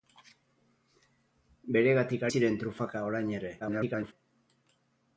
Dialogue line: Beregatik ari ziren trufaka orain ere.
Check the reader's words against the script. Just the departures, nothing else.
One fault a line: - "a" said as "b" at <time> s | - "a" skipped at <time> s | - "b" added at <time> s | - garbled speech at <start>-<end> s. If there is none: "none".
- "ari" skipped at 2.2 s
- garbled speech at 3.6-4.1 s